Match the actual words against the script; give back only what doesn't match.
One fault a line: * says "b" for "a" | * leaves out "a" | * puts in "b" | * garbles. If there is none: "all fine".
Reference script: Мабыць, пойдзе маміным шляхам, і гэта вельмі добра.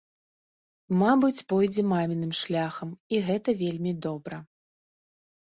all fine